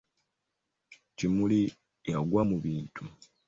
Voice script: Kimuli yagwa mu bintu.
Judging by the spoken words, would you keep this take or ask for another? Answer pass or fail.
pass